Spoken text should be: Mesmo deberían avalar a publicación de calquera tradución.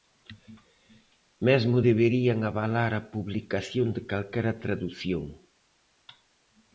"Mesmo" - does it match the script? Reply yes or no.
yes